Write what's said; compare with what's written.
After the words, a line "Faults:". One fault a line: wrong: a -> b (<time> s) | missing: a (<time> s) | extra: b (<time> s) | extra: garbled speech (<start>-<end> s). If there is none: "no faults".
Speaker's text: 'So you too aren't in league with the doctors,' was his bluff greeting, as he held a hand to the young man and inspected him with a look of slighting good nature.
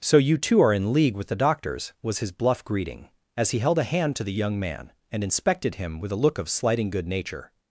'So you too are in league with the doctors,' was his bluff greeting, as he held a hand to the young man and inspected him with a look of slighting good nature.
Faults:
wrong: aren't -> are (0.6 s)